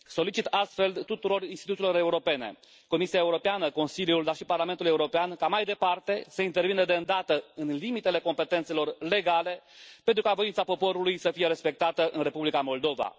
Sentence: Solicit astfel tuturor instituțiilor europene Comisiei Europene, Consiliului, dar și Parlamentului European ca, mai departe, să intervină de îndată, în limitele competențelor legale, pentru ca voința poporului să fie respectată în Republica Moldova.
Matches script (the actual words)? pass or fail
pass